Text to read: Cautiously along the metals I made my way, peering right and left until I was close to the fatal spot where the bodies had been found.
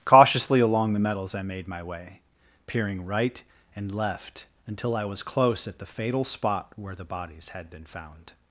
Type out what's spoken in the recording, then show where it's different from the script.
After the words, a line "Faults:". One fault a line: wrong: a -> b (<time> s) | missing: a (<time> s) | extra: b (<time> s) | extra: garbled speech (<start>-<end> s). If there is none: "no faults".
Cautiously along the metals I made my way, peering right and left until I was close at the fatal spot where the bodies had been found.
Faults:
wrong: to -> at (5.7 s)